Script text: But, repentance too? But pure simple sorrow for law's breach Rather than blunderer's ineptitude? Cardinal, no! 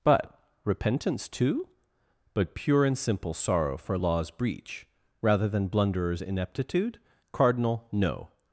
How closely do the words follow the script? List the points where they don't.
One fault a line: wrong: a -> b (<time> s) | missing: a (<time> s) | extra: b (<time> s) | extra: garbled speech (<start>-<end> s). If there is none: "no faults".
extra: and (2.9 s)